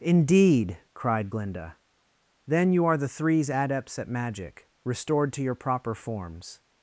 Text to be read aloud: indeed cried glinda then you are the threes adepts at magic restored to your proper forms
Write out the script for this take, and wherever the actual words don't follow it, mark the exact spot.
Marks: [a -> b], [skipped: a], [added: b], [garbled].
indeed cried glinda then you are the threes adepts at magic restored to your proper forms